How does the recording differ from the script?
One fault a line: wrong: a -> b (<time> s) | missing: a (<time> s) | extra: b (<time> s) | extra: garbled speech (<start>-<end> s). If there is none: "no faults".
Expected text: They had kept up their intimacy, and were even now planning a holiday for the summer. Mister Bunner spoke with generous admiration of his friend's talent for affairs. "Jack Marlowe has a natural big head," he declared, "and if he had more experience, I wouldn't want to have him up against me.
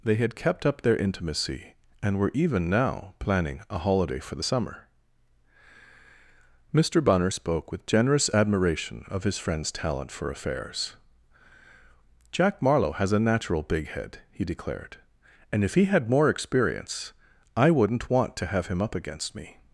no faults